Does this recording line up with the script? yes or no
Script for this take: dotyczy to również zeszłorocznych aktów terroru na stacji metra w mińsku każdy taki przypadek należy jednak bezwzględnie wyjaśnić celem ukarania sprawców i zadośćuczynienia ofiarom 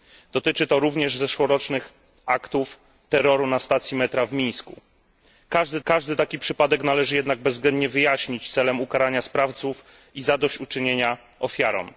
no